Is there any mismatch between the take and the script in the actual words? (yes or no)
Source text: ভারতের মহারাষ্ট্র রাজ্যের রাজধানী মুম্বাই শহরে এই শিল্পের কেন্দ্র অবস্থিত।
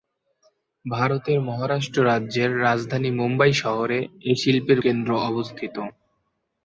no